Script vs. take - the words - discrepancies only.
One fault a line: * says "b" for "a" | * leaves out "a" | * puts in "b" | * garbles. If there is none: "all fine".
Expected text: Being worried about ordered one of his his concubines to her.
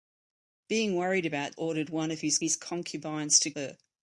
all fine